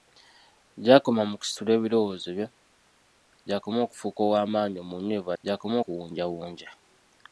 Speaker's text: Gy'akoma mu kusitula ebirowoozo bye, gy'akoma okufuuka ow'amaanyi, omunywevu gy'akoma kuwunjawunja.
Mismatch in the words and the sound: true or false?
false